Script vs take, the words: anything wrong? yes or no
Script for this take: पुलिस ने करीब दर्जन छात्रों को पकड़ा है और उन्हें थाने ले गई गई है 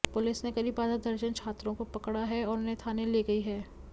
yes